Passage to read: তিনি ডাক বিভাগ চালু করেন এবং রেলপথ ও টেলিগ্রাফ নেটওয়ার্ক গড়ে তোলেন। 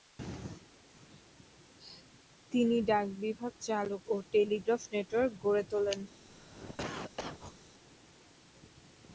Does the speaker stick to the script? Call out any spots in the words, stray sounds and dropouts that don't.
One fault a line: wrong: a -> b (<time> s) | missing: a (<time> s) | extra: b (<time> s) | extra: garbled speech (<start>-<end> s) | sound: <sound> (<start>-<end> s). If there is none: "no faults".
missing: করেন এবং রেলপথ (4.0 s)
sound: cough (6.3-7.6 s)